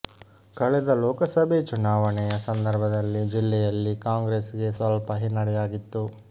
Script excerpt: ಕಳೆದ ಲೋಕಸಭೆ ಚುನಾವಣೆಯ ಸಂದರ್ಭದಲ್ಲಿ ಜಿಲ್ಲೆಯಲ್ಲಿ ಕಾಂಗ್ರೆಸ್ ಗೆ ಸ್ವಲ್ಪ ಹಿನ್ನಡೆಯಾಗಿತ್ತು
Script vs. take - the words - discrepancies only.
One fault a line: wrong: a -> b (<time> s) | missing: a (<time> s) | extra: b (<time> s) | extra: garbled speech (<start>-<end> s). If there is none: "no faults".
no faults